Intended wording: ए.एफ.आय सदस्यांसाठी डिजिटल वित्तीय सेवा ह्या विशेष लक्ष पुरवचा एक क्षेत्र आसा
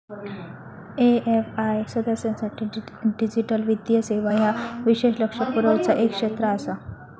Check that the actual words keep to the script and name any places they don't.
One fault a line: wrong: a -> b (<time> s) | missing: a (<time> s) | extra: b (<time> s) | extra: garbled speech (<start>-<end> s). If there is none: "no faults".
no faults